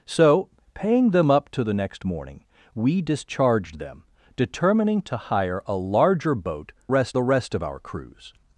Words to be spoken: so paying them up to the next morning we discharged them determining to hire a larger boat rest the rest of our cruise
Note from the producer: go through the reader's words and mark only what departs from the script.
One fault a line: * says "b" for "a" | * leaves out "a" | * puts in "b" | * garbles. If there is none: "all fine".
all fine